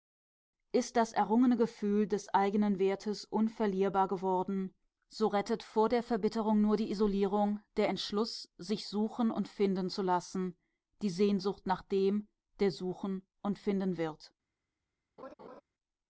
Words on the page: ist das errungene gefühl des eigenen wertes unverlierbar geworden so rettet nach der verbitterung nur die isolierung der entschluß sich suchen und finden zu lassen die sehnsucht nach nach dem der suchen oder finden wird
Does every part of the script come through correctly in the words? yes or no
no